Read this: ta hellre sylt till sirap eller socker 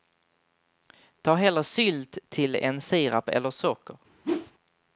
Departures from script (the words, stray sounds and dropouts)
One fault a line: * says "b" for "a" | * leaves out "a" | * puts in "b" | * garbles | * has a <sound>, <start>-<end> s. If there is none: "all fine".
* puts in "än"
* has a whoosh, 4.2-4.5 s